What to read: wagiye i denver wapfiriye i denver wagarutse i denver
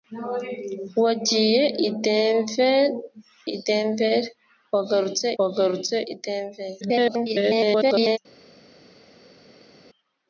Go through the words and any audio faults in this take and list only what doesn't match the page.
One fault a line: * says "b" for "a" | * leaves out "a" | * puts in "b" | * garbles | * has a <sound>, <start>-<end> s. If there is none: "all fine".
* leaves out "wapfiriye"
* puts in "wagarutse"
* garbles